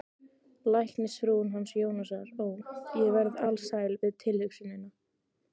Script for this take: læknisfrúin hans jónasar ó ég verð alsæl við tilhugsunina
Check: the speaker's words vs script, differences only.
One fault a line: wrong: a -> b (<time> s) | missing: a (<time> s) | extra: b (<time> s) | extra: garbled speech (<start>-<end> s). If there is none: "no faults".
no faults